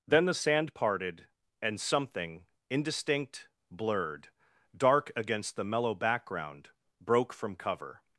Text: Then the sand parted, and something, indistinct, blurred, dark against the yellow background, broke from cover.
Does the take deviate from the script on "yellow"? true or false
true